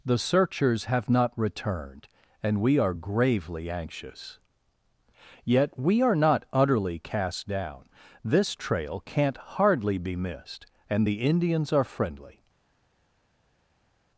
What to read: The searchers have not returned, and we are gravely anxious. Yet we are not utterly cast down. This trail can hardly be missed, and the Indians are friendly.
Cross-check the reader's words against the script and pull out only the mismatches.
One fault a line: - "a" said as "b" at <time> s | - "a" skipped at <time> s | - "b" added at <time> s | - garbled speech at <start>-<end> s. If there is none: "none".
- "can" said as "can't" at 9.0 s